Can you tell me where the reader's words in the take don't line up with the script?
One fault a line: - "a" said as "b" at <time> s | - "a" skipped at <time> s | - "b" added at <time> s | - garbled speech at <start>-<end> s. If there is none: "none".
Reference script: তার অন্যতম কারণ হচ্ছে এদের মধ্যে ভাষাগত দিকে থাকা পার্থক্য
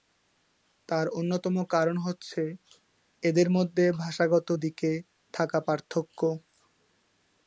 none